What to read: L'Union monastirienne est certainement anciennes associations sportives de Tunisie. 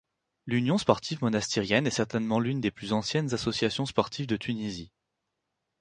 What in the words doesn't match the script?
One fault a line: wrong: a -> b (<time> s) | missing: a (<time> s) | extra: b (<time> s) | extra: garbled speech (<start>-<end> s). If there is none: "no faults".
extra: sportive (0.8 s)
extra: l'une des plus (2.4 s)